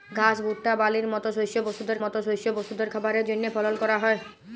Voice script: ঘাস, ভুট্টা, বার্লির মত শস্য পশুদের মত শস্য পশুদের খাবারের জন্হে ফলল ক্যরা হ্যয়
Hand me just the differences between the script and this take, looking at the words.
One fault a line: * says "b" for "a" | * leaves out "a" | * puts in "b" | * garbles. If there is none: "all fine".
all fine